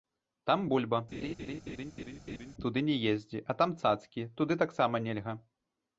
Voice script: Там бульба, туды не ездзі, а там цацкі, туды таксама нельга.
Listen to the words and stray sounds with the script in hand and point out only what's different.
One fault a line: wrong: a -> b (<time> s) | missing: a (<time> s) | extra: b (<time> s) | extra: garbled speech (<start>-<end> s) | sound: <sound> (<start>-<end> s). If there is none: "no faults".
sound: laugh (1.1-2.5 s)